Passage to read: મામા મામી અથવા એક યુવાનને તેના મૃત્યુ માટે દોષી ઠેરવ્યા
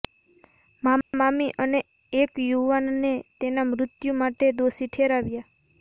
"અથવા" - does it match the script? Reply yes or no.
no